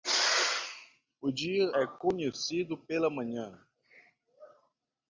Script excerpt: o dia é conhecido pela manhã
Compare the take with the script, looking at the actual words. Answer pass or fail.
pass